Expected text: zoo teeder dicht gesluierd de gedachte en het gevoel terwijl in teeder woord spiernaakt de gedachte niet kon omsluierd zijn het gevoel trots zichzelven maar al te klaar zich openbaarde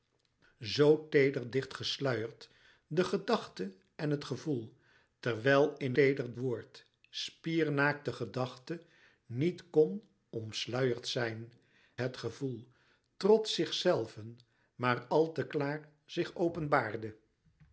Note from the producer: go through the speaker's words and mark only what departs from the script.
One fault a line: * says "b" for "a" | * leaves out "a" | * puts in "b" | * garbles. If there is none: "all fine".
all fine